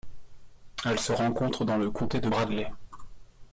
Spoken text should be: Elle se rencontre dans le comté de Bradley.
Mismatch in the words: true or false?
false